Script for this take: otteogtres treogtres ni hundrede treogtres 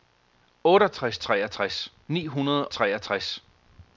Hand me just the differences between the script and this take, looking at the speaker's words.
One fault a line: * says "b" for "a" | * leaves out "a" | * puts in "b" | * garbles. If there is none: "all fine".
all fine